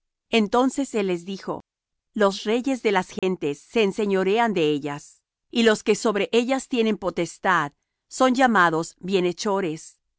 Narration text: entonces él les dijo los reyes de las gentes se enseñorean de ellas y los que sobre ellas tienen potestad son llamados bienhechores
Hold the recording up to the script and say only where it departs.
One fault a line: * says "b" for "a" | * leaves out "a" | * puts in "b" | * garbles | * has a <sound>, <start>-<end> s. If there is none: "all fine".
* has a dropout, 3.2-3.2 s